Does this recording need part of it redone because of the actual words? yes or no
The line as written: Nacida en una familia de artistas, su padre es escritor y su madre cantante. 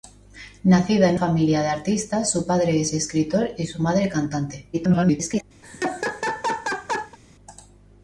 yes